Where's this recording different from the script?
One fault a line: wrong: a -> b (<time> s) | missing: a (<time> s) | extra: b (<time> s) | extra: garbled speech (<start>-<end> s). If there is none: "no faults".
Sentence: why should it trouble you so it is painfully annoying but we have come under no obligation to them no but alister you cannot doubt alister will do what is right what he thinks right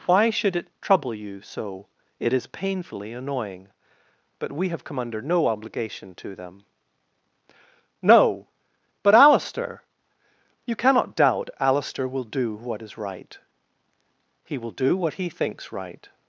extra: he will do (14.4 s)